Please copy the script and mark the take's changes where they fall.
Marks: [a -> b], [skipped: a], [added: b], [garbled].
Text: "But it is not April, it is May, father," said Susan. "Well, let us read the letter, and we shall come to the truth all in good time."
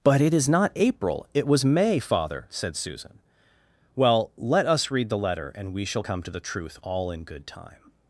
"But it is not April, it [is -> was] May, father," said Susan. "Well, let us read the letter, and we shall come to the truth all in good time."